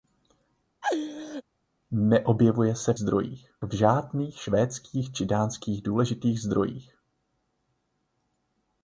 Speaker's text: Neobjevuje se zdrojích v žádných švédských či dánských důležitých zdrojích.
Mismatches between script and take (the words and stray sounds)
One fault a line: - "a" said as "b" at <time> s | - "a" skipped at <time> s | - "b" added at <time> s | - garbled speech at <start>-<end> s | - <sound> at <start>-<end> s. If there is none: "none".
- laugh at 0.8-1.4 s